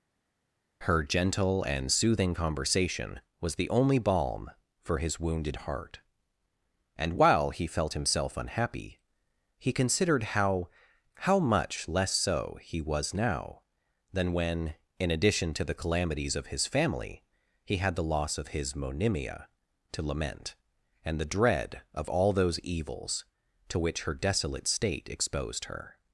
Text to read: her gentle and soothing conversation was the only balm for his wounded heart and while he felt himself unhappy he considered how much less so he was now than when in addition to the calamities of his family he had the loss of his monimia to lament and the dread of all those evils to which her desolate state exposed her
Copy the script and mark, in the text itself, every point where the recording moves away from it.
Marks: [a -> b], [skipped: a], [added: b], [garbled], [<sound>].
her gentle and soothing conversation was the only balm for his wounded heart and while he felt himself unhappy he considered how [added: how] much less so he was now than when in addition to the calamities of his family he had the loss of his monimia to lament and the dread of all those evils to which her desolate state exposed her